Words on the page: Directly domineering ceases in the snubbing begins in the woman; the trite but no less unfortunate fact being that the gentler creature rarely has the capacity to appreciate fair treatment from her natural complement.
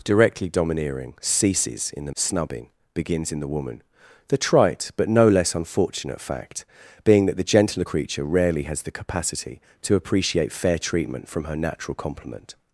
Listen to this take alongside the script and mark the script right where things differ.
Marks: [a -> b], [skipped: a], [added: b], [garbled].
Directly domineering ceases in the snubbing begins in the woman; the trite but no less unfortunate fact being that the gentler creature rarely has the capacity to appreciate fair treatment from her natural complement.